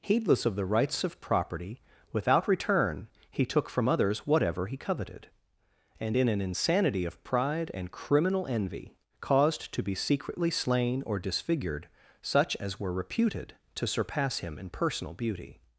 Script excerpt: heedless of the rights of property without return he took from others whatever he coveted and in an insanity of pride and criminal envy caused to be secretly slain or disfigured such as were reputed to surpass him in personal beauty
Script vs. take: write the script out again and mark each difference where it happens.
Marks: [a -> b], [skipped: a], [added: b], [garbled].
heedless of the rights of property without return he took from others whatever he coveted and in an insanity of pride and criminal envy caused to be secretly slain or disfigured such as were reputed to surpass him in personal beauty